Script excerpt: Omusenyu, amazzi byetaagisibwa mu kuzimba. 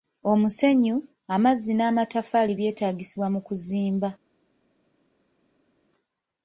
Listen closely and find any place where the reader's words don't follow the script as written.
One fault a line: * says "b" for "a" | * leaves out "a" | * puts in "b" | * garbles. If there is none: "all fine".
* puts in "n'amataffaali"